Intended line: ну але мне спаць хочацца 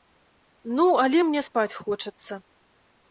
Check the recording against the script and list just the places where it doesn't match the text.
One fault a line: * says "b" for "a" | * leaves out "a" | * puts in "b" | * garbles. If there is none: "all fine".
all fine